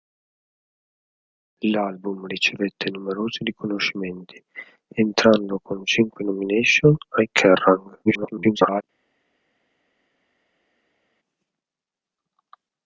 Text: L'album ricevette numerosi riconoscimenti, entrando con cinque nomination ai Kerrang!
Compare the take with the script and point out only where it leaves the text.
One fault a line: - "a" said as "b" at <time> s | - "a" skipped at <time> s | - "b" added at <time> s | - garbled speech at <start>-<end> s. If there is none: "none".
- garbled speech at 8.0-8.8 s